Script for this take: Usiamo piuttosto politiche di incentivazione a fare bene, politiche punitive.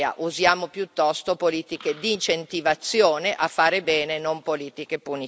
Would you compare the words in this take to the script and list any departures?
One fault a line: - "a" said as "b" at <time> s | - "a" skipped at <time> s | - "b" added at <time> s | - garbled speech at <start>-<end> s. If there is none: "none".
- "non" added at 4.2 s